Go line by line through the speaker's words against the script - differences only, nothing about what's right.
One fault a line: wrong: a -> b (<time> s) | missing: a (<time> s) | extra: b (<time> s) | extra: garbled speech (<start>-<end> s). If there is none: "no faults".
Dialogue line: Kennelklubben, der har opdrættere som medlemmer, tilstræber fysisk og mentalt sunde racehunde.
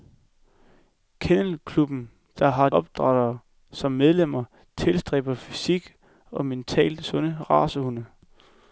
no faults